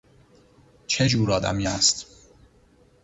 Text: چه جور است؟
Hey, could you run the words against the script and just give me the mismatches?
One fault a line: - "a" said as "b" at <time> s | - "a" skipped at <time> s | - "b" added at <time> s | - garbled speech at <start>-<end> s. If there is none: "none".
- "آدمی" added at 1.3 s